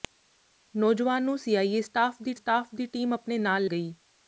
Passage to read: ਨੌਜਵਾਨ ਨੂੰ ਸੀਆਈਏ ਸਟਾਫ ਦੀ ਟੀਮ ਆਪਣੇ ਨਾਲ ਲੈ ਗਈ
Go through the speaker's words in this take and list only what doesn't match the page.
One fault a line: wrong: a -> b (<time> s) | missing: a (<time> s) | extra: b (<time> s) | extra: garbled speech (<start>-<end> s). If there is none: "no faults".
extra: ਸਟਾਫ ਦੀ (2.3 s)
missing: ਲੈ (3.7 s)